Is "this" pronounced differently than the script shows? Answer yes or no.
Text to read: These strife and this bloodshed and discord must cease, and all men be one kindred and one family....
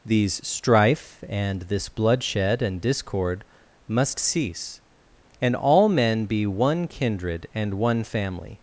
no